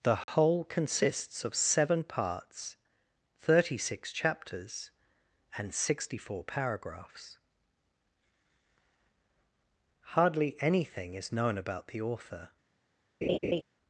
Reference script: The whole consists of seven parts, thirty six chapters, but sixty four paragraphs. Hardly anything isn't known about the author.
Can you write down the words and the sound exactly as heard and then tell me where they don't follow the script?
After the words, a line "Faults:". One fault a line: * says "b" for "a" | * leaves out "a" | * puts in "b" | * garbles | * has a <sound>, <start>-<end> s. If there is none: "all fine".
The whole consists of seven parts, thirty six chapters, and sixty four paragraphs. Hardly anything is known about the author.
Faults:
* has a dropout, 0.2-0.3 s
* says "and" for "but"
* says "is" for "isn't"
* has a laugh, 13.2-13.6 s